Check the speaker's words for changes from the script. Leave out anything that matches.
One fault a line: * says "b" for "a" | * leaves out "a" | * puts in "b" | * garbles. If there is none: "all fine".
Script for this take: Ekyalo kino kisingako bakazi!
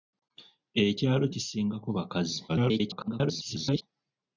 * leaves out "kino"
* garbles